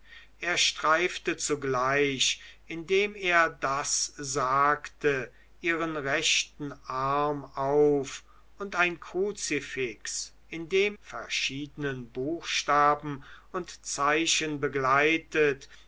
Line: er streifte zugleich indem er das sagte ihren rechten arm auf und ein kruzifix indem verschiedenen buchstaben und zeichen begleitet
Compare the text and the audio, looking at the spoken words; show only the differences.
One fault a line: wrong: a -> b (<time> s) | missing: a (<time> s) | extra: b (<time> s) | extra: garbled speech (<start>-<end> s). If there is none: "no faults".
no faults